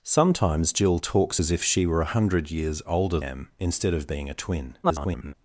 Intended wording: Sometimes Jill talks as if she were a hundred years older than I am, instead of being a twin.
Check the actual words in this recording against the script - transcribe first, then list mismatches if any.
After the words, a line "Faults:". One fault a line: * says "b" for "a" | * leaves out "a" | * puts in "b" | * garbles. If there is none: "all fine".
Sometimes Jill talks as if she were a hundred years older am, instead of being a twin. [garbled]
Faults:
* leaves out "than I"
* garbles